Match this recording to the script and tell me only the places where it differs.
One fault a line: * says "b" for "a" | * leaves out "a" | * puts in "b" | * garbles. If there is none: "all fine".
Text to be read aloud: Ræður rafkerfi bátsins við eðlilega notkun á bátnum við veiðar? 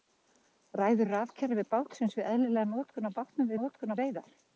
* says "notkun" for "við"